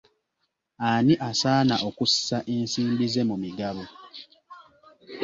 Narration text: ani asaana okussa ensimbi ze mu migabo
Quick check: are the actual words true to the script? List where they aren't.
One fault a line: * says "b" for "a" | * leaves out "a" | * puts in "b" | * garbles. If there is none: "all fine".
all fine